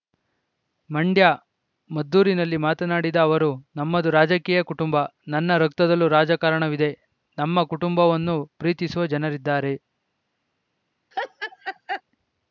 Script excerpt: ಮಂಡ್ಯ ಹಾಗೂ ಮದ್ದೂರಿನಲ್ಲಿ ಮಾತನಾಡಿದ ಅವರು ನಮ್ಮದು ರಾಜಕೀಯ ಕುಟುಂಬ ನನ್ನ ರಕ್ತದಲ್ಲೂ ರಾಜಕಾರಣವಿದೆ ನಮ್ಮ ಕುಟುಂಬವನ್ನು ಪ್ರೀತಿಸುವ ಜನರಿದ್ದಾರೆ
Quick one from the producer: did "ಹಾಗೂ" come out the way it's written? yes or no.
no